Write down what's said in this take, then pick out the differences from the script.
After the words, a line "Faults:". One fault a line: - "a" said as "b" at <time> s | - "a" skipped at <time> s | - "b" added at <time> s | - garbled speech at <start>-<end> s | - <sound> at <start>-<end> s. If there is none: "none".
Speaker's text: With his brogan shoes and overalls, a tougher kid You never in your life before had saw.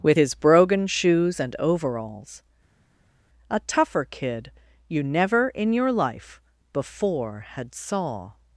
With his brogan shoes and overalls, a tougher kid You never in your life before had saw.
Faults:
none